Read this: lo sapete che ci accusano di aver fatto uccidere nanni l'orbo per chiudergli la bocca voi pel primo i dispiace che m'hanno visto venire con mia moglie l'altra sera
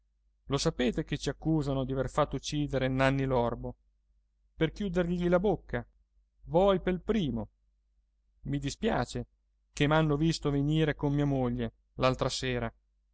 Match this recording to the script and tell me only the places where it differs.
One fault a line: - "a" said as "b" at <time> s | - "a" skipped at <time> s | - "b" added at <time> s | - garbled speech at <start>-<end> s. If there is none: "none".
none